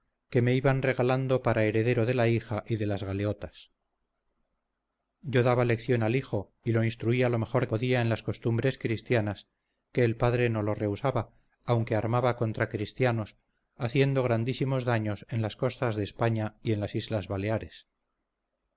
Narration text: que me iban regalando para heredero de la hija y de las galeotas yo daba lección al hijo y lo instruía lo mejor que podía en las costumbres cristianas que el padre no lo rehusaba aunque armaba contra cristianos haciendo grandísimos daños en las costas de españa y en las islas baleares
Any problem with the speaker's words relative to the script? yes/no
yes